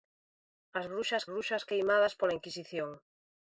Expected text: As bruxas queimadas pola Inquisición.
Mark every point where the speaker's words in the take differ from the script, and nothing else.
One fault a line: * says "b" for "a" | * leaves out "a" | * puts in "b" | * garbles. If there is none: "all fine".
* puts in "bruxas"